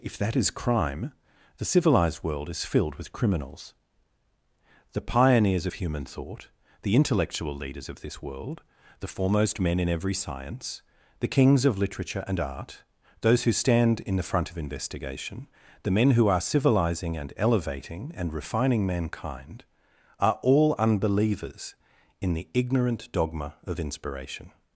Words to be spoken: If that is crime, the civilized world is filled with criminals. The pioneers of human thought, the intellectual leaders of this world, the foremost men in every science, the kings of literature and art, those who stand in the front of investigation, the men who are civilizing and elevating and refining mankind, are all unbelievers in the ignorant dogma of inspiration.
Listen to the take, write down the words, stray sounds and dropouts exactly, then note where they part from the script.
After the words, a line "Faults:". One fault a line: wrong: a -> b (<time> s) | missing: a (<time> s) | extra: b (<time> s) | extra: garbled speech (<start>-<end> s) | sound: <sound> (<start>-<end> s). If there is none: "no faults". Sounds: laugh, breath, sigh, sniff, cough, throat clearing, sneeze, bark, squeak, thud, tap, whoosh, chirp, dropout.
If that is crime, the civilized world is filled with criminals. The pioneers of human thought, the intellectual leaders of this world, the foremost men in every science, the kings of literature and art, those who stand in the front of investigation, the men who are civilizing and elevating and refining mankind, are all unbelievers in the ignorant dogma of inspiration.
Faults:
no faults